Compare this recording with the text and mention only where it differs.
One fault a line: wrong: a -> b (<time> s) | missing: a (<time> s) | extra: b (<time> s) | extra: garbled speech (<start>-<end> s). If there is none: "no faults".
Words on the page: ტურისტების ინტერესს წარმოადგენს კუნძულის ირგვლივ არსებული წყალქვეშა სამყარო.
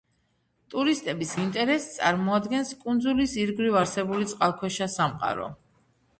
no faults